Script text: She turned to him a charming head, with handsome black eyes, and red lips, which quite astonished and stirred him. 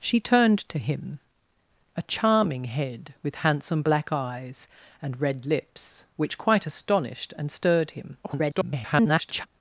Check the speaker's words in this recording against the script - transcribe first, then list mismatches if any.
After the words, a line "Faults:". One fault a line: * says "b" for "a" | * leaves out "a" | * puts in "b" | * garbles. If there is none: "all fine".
She turned to him a charming head, with handsome black eyes, and red lips, which quite astonished and stirred him. [garbled]
Faults:
* garbles